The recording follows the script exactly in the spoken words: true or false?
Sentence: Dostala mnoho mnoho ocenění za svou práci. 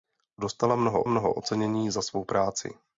true